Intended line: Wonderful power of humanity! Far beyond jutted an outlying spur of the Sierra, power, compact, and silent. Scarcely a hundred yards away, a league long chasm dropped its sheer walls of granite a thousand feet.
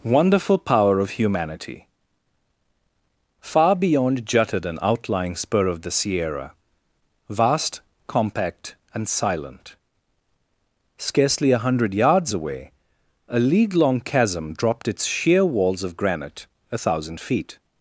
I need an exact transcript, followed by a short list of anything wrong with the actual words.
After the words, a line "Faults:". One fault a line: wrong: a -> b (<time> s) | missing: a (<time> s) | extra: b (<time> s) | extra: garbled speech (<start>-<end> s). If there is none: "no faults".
Wonderful power of humanity! Far beyond jutted an outlying spur of the Sierra, vast, compact, and silent. Scarcely a hundred yards away, a league long chasm dropped its sheer walls of granite a thousand feet.
Faults:
wrong: power -> vast (7.3 s)